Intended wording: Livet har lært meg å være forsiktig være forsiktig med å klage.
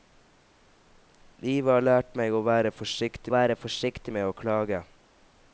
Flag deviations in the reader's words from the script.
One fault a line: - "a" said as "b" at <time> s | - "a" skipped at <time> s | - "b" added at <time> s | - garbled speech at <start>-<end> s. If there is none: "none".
none